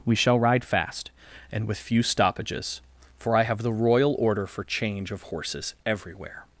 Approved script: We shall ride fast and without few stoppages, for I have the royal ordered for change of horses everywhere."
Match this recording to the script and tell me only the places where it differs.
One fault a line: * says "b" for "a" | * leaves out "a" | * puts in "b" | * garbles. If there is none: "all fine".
* says "with" for "without"
* says "order" for "ordered"